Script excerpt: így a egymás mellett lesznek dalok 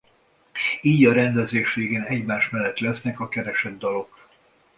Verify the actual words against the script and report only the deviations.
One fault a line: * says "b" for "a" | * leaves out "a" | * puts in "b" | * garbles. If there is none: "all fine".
* puts in "rendezés végén"
* puts in "a keresett"